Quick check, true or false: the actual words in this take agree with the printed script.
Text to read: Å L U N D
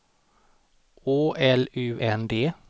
true